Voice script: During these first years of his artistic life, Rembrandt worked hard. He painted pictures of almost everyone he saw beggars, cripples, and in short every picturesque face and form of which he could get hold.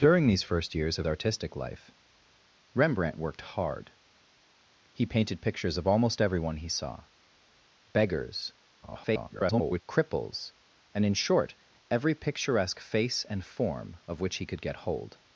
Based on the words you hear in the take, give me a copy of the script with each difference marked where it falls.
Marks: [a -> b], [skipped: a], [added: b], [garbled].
During these first years of [skipped: his] artistic life, Rembrandt worked hard. He painted pictures of almost everyone he saw beggars, [garbled] cripples, and in short every picturesque face and form of which he could get hold.